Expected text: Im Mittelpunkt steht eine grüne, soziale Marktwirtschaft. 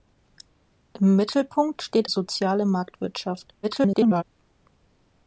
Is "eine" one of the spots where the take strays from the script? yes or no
yes